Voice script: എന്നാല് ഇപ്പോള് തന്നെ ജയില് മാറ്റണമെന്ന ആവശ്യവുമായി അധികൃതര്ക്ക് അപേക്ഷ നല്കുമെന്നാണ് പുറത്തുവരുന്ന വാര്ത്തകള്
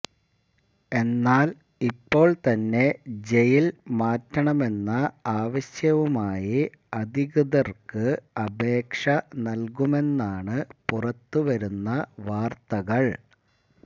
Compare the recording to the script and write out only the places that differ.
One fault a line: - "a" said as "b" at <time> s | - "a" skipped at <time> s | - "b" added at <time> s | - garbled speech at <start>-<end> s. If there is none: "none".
none